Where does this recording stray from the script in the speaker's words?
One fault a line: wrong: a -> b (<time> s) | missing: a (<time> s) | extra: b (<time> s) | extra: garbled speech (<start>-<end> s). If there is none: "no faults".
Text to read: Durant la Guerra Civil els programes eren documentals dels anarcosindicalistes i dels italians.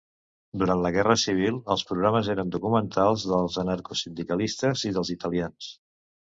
no faults